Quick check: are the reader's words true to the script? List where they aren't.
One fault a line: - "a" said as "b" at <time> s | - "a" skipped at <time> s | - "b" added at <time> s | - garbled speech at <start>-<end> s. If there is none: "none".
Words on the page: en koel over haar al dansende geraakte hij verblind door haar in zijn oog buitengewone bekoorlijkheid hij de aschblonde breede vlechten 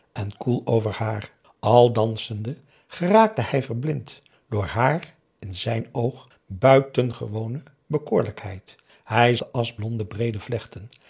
none